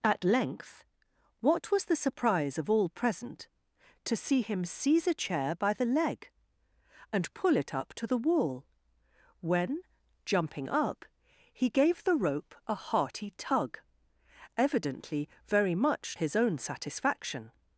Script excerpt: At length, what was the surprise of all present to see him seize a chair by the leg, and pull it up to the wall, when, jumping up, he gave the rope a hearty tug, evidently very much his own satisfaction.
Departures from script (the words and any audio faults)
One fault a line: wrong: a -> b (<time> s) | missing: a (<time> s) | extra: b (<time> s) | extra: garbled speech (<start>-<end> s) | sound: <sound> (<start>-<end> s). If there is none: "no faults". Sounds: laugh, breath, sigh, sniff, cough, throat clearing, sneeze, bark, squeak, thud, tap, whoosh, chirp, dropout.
no faults